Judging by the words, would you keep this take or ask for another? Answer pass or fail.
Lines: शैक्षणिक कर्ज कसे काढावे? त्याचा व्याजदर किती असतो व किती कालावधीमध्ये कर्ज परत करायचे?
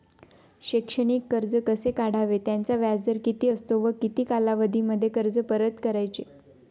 pass